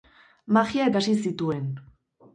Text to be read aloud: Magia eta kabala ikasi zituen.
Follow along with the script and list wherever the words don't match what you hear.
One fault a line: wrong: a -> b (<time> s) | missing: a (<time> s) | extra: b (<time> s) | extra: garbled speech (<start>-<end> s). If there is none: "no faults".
missing: eta kabala (0.9 s)